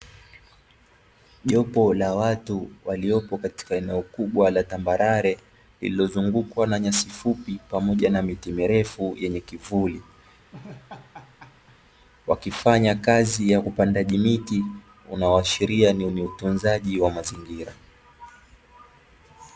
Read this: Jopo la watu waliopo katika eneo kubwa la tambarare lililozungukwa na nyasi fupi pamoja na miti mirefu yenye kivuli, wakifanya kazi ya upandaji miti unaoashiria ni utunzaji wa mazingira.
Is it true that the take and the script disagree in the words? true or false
true